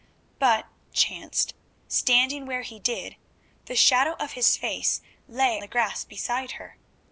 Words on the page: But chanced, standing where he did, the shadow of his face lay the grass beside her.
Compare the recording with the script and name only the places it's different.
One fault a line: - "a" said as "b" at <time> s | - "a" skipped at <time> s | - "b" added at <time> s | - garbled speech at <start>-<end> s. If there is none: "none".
none